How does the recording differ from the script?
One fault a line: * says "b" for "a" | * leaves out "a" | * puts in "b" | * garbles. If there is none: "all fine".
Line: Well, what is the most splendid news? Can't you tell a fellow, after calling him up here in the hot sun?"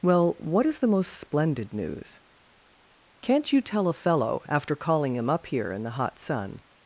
all fine